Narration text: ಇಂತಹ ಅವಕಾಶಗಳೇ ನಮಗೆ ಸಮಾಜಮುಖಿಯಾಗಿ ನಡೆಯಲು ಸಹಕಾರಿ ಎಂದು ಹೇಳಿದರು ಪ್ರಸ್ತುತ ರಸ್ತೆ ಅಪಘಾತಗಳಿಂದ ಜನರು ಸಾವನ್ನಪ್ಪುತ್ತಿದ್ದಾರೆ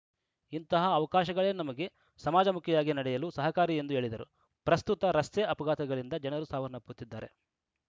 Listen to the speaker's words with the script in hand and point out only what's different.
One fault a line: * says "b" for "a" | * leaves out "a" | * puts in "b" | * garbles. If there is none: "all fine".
all fine